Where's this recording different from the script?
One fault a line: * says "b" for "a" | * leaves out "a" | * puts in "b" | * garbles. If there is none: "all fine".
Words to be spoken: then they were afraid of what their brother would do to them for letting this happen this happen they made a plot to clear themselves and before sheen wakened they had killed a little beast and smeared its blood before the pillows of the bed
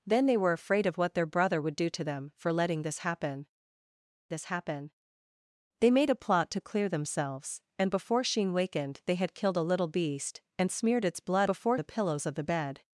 all fine